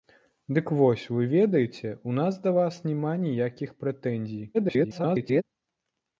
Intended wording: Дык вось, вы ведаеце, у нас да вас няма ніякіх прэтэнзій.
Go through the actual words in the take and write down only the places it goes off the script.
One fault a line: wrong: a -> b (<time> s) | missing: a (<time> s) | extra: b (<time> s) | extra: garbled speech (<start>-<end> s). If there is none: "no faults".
extra: garbled speech (4.5-5.4 s)